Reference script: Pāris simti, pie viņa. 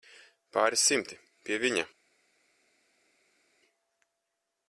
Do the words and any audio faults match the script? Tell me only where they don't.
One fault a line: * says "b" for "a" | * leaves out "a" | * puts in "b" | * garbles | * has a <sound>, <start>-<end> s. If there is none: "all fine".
all fine